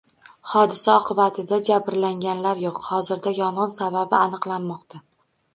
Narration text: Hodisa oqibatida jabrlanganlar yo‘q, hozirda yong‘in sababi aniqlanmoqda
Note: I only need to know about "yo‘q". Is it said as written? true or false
true